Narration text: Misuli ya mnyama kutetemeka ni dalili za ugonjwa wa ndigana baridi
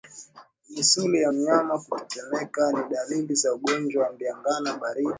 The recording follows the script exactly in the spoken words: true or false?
true